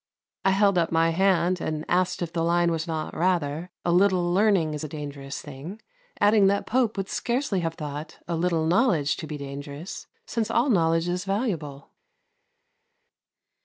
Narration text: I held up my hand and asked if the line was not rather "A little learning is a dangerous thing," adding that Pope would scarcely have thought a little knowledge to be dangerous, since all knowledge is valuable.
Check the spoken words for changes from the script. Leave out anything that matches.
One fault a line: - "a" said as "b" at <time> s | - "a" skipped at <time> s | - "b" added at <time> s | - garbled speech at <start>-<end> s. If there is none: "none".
none